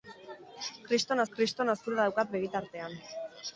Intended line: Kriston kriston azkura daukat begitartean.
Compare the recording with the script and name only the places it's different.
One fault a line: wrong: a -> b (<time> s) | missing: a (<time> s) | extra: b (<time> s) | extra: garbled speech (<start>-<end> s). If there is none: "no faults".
no faults